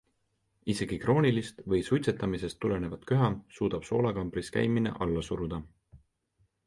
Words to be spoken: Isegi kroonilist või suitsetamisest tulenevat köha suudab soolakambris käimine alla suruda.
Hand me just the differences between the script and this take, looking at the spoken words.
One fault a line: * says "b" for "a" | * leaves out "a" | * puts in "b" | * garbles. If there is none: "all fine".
all fine